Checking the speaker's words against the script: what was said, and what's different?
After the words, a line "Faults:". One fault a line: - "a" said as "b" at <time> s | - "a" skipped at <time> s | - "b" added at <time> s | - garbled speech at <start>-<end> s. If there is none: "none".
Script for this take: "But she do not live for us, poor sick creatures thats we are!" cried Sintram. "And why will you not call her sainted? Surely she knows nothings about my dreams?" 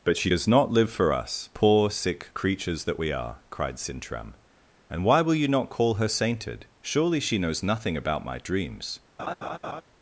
"But she does not live for us, poor sick creatures that we are!" cried Sintram. "And why will you not call her sainted? Surely she knows nothing about my dreams?"
Faults:
- "do" said as "does" at 0.3 s
- "thats" said as "that" at 2.8 s
- "nothings" said as "nothing" at 7.6 s